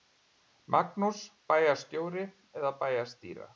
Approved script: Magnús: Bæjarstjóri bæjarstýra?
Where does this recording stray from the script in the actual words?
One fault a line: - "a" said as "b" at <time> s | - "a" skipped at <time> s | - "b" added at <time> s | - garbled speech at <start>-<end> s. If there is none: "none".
- "eða" added at 2.6 s